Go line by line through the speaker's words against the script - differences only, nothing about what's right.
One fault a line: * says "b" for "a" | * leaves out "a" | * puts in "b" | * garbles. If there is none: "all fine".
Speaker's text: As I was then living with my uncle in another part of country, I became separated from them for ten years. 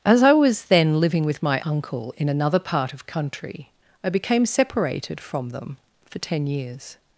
all fine